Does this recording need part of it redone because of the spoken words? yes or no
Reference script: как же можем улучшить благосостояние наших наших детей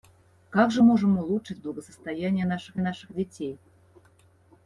no